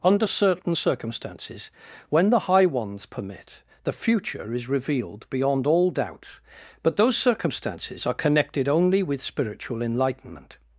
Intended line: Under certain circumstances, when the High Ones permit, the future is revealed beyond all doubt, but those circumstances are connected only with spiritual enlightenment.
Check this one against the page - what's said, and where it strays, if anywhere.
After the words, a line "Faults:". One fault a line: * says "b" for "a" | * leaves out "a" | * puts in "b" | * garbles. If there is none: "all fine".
Under certain circumstances, when the High Ones permit, the future is revealed beyond all doubt, but those circumstances are connected only with spiritual enlightenment.
Faults:
all fine